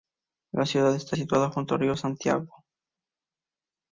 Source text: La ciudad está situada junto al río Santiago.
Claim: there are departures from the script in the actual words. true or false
false